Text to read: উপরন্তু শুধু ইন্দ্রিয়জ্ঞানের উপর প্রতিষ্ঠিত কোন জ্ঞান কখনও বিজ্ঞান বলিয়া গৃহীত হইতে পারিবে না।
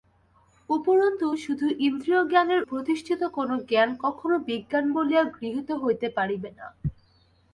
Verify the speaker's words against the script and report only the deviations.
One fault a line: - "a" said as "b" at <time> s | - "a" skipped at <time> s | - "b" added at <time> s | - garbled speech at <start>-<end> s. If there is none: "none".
- "উপর" skipped at 2.6 s